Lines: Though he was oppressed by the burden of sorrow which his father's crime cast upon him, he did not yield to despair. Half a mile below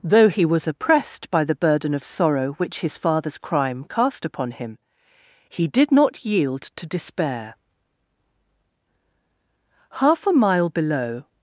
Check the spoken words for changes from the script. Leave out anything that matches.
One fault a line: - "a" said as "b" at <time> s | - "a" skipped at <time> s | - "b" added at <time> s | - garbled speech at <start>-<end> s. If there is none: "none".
none